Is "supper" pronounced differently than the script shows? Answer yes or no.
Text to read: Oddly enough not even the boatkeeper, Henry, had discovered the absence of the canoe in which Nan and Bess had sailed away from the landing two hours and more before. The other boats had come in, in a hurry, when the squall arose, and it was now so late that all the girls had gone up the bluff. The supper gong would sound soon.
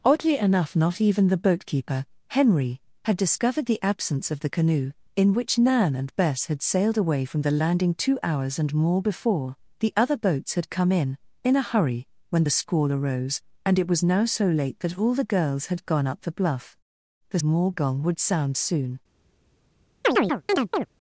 yes